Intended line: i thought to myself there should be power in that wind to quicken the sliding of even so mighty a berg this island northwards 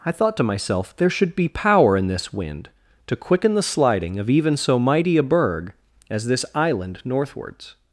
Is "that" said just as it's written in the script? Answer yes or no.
no